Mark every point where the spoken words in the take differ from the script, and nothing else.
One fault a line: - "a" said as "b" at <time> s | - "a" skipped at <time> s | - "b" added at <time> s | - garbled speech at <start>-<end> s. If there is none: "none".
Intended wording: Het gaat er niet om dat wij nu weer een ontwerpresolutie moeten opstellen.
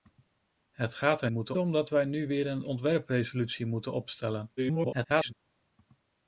- "niet" said as "moeten" at 1.3 s
- garbled speech at 4.6-5.3 s